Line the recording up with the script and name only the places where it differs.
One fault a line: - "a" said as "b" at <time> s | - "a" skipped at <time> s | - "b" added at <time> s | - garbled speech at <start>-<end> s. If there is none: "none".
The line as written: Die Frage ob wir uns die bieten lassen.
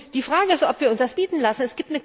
- "ist" added at 0.5 s
- "die" said as "das" at 1.0 s